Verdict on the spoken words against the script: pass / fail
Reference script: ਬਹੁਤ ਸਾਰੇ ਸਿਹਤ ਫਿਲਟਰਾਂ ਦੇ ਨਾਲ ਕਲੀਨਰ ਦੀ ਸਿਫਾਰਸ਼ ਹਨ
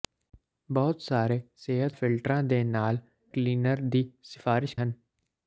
pass